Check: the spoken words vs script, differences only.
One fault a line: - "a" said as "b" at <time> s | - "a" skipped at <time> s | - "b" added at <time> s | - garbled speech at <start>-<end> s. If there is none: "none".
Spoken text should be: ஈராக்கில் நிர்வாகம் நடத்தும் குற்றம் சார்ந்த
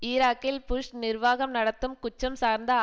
- "புஷ்" added at 0.7 s